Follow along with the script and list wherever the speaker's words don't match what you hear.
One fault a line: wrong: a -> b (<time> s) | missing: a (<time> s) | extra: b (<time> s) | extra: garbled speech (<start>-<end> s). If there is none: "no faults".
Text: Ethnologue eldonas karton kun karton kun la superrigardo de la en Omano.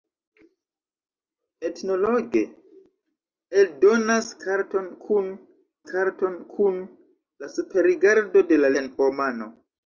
no faults